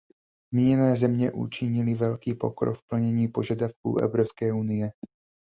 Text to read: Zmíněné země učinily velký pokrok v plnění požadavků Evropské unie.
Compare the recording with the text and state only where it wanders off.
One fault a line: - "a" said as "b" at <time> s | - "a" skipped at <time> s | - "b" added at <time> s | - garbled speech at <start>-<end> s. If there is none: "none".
none